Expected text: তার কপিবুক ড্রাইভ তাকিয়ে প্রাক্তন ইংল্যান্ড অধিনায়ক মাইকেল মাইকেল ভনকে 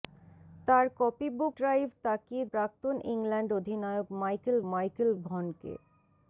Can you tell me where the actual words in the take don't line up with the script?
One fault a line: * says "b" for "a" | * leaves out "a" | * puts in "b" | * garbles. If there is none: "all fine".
all fine